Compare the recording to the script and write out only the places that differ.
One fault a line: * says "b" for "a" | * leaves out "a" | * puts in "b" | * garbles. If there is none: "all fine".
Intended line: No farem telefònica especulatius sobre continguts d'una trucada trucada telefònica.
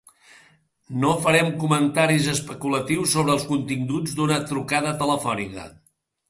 * says "comentaris" for "telefònica"
* puts in "els"
* leaves out "trucada"